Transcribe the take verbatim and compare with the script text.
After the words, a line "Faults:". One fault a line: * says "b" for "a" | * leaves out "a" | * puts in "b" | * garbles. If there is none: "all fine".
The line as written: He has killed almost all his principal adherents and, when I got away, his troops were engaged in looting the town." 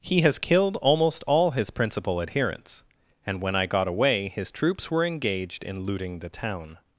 He has killed almost all his principal adherents and, when I got away, his troops were engaged in looting the town."
Faults:
all fine